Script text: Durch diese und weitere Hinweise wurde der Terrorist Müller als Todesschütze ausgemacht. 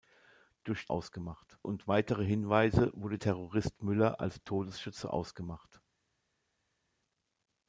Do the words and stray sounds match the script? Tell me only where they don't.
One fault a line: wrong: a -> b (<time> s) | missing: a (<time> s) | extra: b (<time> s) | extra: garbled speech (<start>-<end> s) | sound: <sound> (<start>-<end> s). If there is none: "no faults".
wrong: diese -> ausgemacht (0.9 s)
missing: der (3.2 s)